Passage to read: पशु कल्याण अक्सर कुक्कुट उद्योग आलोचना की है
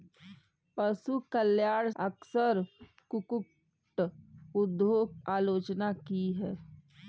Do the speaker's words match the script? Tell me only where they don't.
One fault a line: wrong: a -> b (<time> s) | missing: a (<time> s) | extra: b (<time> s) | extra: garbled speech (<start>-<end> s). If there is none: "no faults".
no faults